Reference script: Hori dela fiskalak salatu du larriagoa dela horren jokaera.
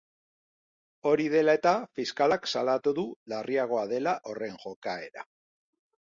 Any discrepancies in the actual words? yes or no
yes